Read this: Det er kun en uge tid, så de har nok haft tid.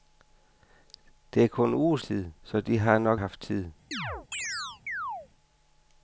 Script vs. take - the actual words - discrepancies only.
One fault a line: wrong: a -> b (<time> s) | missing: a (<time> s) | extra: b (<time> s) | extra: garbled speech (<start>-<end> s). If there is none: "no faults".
no faults